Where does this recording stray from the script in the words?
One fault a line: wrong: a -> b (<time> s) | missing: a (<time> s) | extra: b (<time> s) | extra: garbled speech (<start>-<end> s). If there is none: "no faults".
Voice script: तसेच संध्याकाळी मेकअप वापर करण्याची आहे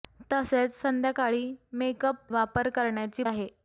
no faults